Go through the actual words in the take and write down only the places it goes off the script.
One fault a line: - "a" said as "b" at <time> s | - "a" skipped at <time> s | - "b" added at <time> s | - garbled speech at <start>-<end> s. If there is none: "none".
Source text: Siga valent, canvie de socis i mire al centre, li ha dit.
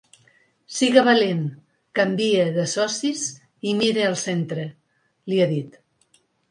none